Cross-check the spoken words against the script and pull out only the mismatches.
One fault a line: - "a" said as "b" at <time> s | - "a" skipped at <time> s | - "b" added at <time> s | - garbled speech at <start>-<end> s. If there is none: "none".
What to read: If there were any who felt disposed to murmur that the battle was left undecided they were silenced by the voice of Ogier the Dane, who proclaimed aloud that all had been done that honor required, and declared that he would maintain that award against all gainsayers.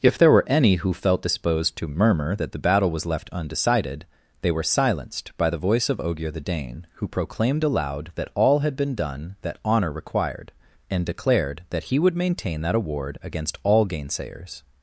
none